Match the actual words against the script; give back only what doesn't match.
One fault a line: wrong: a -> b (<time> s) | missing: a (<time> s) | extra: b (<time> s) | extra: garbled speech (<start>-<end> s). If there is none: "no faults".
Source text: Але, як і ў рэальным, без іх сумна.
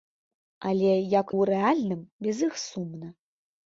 missing: і (1.3 s)